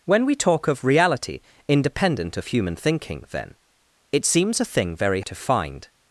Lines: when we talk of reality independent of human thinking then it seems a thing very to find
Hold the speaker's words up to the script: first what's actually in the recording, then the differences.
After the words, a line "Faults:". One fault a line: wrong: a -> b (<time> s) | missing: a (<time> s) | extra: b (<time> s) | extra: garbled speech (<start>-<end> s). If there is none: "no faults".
when we talk of reality independent of human thinking then it seems a thing very to find
Faults:
no faults